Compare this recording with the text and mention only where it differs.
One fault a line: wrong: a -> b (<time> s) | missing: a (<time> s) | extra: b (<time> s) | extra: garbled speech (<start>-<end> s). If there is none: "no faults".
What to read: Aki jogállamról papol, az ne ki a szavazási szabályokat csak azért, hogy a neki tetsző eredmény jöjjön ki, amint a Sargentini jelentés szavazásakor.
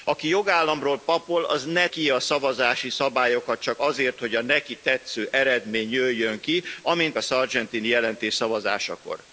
no faults